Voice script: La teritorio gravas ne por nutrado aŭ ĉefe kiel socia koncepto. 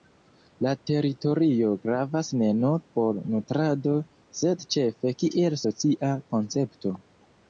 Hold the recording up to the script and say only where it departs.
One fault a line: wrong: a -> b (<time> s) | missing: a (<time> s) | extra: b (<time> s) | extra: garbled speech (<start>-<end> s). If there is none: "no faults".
extra: nur (2.6 s)
wrong: aŭ -> sed (4.4 s)